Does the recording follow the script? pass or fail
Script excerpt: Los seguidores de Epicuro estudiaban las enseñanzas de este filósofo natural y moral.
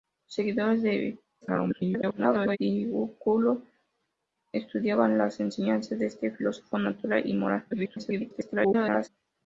fail